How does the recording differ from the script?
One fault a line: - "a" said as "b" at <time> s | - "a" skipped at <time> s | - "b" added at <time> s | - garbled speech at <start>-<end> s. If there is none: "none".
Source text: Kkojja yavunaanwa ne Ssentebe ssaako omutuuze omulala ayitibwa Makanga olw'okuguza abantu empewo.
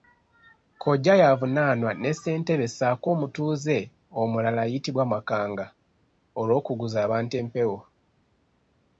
none